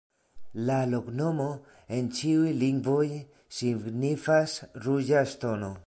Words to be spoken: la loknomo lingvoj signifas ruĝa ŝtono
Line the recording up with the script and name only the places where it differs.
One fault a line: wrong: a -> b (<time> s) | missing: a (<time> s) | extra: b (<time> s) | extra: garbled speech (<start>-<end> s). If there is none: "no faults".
extra: en ĉiuj (2.0 s)